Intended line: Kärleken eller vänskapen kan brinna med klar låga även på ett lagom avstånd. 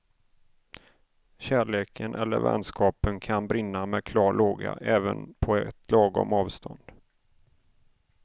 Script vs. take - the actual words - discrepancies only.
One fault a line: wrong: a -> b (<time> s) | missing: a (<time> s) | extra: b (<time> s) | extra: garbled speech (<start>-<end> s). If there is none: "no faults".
no faults